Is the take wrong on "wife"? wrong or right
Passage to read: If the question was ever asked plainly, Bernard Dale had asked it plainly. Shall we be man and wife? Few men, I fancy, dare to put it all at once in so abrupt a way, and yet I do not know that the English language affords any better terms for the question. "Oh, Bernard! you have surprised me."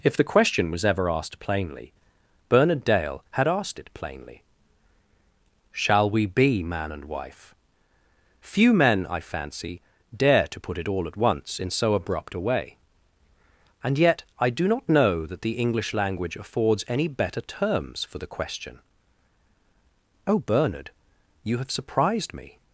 right